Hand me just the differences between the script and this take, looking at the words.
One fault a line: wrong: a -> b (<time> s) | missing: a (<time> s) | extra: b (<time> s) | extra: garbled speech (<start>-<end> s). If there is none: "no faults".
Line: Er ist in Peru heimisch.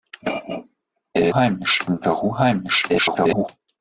wrong: ist -> heimisch (1.3 s)
extra: garbled speech (2.9-3.5 s)